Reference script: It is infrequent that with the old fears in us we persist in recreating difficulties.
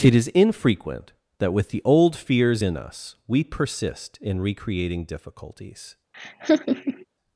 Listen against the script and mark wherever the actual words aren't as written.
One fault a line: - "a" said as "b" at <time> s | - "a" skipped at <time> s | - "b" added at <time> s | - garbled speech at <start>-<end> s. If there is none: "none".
none